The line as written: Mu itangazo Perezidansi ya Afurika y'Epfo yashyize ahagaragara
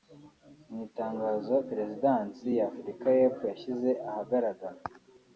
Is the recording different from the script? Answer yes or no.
no